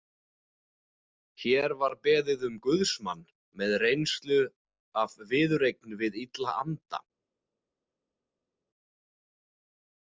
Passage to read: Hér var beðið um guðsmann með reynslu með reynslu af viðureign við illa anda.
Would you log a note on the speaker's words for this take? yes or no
yes